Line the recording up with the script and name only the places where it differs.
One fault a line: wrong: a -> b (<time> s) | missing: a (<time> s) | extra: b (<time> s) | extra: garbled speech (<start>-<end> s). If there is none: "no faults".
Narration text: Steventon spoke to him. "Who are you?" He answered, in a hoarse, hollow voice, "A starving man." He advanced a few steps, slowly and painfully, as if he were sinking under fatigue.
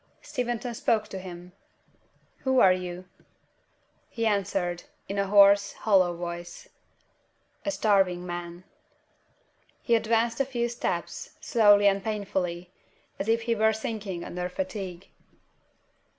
no faults